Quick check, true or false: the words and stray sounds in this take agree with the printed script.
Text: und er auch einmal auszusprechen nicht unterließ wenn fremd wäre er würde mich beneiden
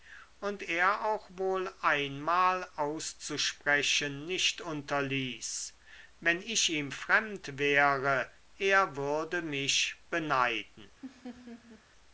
false